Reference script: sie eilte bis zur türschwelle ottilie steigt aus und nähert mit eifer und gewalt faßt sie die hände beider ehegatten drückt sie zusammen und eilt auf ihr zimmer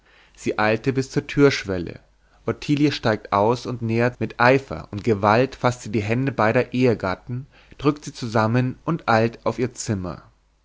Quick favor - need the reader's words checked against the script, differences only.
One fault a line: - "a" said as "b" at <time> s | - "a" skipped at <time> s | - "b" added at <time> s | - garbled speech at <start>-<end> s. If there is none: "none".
none